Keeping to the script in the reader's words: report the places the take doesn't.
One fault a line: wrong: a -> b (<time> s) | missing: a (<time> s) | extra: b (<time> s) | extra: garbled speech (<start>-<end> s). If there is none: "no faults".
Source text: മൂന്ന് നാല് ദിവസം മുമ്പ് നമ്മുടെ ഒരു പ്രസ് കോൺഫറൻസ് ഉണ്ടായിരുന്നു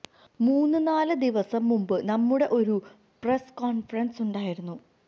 no faults